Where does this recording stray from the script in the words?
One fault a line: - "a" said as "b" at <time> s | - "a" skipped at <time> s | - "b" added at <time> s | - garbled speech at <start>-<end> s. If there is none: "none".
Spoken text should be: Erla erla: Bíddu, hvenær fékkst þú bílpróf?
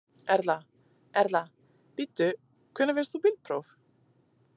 none